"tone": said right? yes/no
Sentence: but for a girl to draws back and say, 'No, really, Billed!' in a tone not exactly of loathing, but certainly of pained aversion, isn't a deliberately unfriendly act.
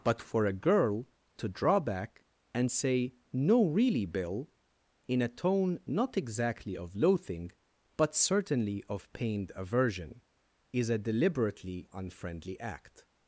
yes